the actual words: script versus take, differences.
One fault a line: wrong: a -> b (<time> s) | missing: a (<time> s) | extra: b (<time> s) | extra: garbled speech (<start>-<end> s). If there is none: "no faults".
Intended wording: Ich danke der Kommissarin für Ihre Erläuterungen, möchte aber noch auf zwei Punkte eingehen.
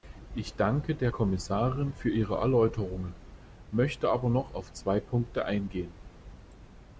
no faults